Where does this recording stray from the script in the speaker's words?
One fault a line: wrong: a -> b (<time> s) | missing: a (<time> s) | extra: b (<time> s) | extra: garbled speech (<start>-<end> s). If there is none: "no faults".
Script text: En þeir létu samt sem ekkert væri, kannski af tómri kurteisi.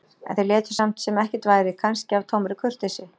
no faults